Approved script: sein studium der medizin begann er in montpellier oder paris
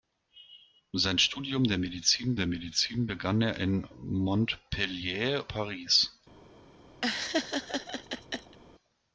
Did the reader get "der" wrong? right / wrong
right